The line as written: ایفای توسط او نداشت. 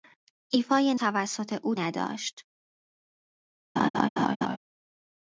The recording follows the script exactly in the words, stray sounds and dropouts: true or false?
false